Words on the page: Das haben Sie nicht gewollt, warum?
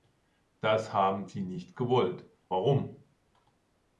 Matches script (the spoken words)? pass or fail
pass